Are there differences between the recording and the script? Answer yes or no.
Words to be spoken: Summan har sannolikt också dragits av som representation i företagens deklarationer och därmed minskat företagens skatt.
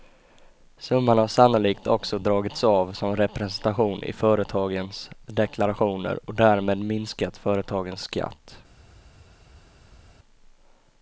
no